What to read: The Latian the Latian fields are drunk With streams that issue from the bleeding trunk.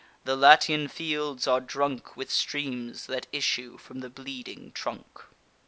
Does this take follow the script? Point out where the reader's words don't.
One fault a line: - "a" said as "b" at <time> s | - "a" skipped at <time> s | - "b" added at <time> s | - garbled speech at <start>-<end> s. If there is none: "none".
- "the Latian" skipped at 0.9 s